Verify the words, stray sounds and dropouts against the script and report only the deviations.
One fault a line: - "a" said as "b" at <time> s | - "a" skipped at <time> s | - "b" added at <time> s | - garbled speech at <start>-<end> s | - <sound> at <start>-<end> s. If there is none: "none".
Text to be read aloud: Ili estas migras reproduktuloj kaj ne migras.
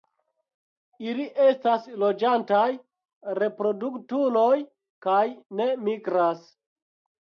- "migras" said as "loĝantaj" at 2.0 s